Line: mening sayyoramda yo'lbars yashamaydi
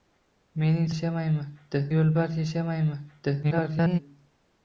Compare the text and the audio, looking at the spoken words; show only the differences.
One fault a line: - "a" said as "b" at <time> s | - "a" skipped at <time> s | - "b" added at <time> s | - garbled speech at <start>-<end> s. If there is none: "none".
- "sayyoramda" said as "yashamaydi" at 0.9 s
- garbled speech at 3.4-4.0 s